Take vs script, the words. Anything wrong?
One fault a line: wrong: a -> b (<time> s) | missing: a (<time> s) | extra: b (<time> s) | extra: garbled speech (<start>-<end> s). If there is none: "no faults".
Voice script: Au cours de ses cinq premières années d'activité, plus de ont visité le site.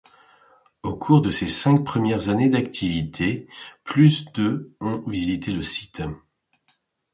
no faults